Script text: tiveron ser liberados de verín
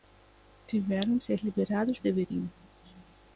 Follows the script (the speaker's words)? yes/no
yes